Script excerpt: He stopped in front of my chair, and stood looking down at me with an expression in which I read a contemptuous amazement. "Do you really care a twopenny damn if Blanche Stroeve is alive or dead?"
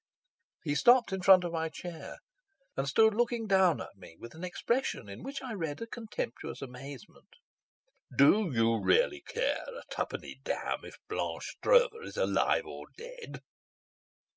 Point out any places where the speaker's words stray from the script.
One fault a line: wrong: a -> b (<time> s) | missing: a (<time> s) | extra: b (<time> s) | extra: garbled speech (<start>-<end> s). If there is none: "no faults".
no faults